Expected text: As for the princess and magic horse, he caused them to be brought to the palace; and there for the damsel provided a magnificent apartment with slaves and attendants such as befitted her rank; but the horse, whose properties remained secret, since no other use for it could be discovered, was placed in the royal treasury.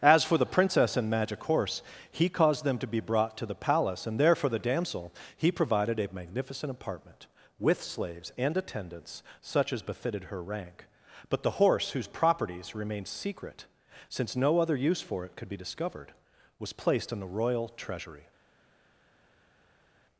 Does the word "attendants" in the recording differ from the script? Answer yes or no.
no